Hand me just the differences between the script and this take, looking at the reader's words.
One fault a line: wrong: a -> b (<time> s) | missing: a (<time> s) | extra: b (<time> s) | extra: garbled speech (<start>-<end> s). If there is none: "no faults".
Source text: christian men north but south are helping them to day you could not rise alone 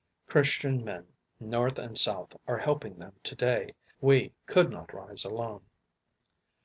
wrong: but -> and (1.8 s)
wrong: you -> we (4.0 s)